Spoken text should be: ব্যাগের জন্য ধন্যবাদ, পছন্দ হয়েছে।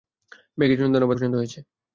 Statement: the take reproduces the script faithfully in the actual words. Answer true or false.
true